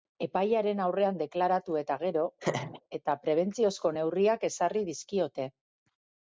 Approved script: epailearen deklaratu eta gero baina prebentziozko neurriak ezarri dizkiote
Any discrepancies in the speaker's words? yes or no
yes